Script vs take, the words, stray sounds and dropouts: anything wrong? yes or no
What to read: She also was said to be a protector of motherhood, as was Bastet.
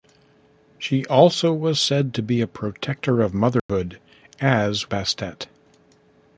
yes